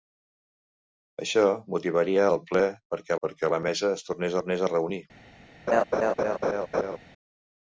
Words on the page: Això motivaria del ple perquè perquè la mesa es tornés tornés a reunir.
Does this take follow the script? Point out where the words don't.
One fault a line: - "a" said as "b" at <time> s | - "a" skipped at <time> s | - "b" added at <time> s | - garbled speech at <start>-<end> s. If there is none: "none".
none